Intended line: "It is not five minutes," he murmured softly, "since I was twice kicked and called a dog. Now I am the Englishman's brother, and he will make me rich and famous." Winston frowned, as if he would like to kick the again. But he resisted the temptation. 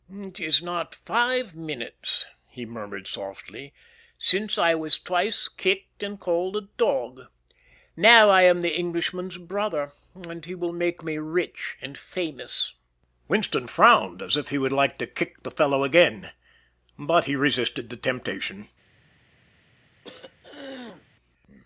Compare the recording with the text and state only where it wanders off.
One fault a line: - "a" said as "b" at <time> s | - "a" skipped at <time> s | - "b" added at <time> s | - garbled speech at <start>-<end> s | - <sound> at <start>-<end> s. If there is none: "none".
- "fellow" added at 15.5 s
- throat clearing at 20.0-21.1 s